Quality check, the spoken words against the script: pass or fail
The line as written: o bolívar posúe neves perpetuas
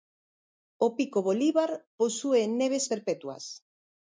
fail